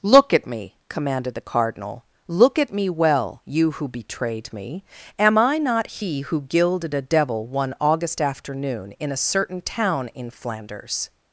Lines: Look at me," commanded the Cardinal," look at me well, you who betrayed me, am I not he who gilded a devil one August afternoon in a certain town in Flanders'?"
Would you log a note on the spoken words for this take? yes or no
no